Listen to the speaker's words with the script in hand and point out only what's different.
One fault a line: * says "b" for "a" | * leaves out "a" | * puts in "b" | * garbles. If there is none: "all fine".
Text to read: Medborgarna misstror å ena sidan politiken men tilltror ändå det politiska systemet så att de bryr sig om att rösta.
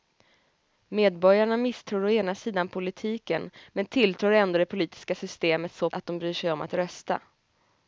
all fine